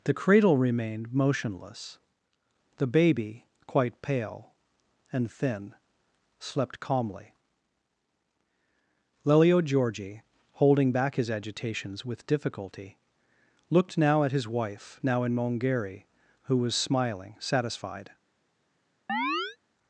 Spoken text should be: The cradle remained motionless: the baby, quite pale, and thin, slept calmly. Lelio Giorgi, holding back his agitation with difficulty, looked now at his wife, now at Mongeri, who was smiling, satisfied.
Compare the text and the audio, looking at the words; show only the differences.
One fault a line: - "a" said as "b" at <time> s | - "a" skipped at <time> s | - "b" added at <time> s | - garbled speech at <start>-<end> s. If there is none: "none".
- "agitation" said as "agitations" at 11.3 s
- "at" said as "in" at 15.2 s